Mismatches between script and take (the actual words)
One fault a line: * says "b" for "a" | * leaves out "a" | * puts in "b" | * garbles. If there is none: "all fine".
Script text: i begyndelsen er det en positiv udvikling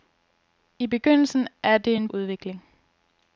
* leaves out "positiv"